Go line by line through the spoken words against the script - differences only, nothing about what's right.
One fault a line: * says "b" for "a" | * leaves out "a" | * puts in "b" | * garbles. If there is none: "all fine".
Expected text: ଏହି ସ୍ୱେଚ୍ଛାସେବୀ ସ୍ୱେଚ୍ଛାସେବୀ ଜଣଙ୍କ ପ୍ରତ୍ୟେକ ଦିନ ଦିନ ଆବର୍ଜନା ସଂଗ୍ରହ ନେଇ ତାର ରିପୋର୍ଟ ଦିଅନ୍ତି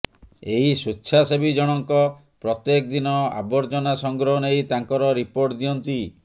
* leaves out "ସ୍ୱେଚ୍ଛାସେବୀ"
* leaves out "ଦିନ"
* says "ତାଙ୍କର" for "ତାର"